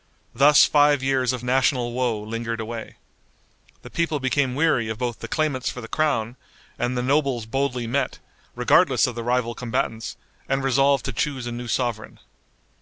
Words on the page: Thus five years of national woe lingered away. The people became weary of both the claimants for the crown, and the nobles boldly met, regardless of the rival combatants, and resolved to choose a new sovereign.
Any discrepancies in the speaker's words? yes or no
no